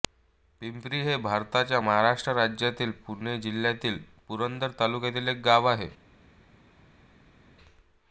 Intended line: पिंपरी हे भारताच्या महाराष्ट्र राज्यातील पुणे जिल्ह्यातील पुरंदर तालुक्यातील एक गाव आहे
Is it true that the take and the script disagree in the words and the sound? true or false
false